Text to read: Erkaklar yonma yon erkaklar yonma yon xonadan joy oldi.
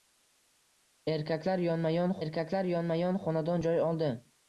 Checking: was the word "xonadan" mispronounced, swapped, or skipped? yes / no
no